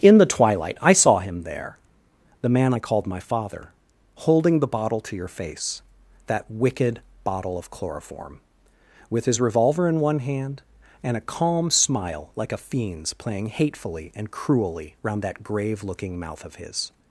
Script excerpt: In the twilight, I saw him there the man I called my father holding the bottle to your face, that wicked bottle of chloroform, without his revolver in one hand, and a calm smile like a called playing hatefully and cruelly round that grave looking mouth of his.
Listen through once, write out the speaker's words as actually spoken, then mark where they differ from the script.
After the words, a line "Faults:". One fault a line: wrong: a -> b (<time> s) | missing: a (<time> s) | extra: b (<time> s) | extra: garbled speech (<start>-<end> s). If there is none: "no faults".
In the twilight, I saw him there the man I called my father holding the bottle to your face, that wicked bottle of chloroform, with his revolver in one hand, and a calm smile like a fiend's playing hatefully and cruelly round that grave looking mouth of his.
Faults:
wrong: without -> with (9.1 s)
wrong: called -> fiend's (12.6 s)